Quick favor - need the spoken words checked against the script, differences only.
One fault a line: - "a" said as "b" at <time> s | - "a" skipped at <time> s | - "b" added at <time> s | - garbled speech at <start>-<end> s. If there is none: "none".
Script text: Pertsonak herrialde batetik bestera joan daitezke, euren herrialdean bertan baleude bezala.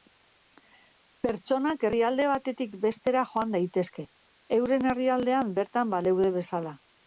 none